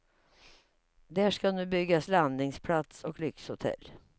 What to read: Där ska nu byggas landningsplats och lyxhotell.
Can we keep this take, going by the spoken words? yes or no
yes